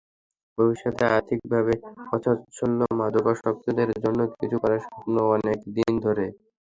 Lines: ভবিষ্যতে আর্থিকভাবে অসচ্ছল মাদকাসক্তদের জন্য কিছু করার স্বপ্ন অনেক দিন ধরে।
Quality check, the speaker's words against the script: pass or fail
pass